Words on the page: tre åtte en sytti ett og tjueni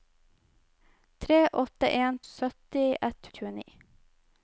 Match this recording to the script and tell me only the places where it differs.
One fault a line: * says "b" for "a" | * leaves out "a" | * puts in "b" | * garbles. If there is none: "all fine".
all fine